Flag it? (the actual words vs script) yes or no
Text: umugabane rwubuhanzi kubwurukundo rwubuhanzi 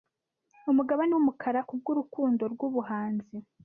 yes